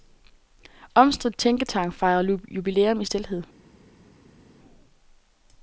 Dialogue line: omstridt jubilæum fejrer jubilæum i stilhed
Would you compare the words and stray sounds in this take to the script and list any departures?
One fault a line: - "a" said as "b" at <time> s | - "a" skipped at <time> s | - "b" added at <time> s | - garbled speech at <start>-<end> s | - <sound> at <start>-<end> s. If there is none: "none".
- "jubilæum" said as "tænketank" at 1.4 s